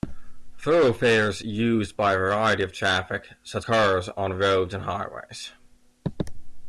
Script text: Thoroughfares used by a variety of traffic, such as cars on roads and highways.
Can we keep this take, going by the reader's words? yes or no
no